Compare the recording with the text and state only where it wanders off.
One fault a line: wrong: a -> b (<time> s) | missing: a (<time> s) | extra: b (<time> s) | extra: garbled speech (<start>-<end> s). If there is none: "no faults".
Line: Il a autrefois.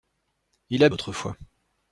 no faults